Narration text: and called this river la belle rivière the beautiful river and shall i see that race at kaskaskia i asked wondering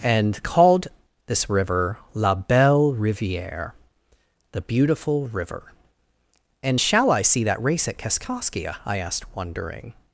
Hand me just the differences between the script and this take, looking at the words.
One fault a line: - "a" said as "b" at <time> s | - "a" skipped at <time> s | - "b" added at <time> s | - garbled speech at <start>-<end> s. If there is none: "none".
none